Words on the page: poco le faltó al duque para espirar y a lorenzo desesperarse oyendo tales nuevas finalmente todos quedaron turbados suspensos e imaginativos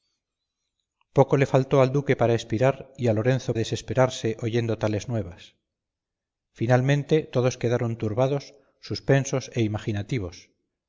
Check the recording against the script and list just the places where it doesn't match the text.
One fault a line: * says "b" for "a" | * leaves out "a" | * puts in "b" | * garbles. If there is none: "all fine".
all fine